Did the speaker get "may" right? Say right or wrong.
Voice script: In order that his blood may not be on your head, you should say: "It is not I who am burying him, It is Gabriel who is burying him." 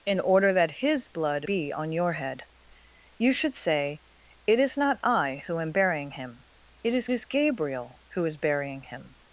wrong